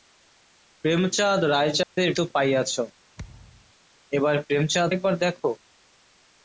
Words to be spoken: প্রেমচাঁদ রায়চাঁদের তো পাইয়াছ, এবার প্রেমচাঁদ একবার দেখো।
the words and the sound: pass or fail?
fail